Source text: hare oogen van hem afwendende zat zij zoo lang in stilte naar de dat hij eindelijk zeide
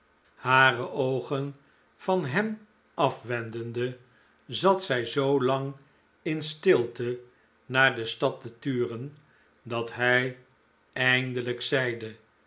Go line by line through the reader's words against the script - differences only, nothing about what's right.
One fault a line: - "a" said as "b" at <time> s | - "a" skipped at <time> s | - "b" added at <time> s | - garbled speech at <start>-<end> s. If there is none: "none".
- "stad te turen" added at 8.1 s